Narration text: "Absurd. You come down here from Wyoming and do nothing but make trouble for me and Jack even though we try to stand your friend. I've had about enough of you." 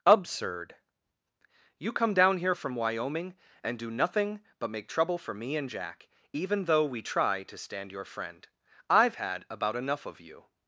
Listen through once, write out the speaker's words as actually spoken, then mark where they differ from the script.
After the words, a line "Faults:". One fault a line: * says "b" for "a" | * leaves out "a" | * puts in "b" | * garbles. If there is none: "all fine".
"Absurd. You come down here from Wyoming and do nothing but make trouble for me and Jack even though we try to stand your friend. I've had about enough of you."
Faults:
all fine